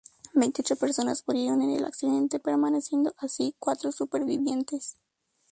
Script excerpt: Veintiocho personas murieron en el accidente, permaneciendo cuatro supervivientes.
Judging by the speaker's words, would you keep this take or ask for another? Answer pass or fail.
fail